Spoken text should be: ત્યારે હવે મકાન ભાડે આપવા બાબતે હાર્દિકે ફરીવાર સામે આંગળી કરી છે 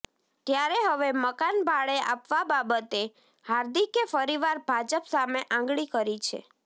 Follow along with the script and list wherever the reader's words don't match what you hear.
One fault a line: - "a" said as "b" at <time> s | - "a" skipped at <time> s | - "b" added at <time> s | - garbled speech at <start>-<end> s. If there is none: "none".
- "ભાજપ" added at 4.7 s